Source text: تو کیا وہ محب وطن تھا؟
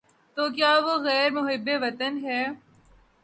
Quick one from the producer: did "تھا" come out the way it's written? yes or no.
no